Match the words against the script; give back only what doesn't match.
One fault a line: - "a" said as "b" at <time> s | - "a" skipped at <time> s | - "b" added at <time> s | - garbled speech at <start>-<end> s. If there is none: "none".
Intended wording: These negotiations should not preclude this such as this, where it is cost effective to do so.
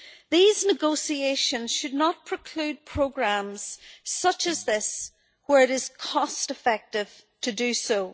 - "this" said as "programmes" at 2.9 s